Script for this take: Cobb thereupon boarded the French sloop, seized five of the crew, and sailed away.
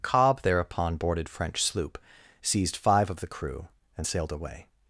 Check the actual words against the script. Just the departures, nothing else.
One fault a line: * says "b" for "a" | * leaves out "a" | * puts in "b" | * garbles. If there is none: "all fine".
* leaves out "the"